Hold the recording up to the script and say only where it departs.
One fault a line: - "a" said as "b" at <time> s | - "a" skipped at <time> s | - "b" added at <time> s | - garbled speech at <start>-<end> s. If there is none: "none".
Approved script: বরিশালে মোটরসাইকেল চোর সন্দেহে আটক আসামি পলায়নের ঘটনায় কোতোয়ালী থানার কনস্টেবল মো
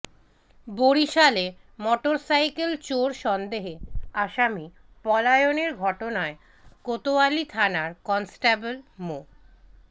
- "আটক" skipped at 3.7 s